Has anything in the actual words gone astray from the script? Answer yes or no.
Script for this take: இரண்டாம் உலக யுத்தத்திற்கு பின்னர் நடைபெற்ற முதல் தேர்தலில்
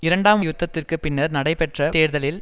yes